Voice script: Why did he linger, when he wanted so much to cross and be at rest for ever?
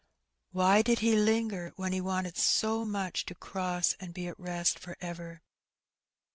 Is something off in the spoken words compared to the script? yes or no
no